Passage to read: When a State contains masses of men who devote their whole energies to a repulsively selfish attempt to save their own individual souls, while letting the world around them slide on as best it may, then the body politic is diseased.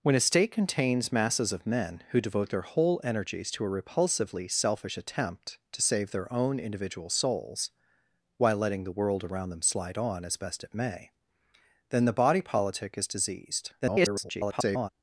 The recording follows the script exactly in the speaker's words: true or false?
false